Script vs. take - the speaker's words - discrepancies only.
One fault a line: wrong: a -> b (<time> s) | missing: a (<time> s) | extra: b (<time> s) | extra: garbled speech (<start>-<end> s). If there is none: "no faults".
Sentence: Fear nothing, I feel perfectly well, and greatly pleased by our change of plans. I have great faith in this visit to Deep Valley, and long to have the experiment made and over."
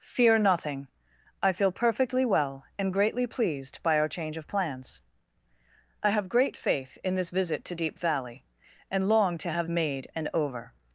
missing: the experiment (9.7 s)